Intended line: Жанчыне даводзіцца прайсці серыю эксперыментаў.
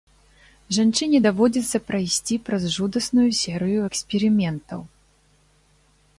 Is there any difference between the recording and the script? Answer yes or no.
yes